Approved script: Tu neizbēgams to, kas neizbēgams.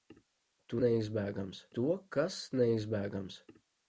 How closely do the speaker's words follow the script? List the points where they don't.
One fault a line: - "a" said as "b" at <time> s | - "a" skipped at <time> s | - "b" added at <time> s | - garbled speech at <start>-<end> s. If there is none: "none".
none